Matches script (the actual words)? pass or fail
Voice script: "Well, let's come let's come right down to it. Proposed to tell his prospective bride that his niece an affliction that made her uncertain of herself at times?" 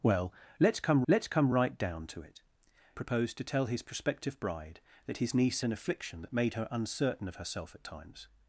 pass